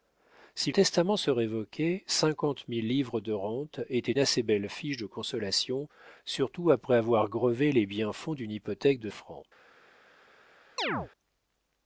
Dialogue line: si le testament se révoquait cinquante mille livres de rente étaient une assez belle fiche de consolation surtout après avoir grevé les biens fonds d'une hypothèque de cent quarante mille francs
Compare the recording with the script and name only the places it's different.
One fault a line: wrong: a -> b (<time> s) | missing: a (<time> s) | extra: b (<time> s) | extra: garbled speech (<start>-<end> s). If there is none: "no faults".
missing: le (0.7 s)
missing: une (4.1 s)
missing: cent quarante mille (9.1 s)